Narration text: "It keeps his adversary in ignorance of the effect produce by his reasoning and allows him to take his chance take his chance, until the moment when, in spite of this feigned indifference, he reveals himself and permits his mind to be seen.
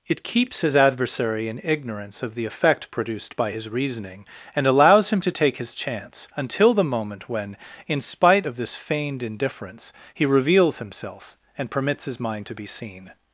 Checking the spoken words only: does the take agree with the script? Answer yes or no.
no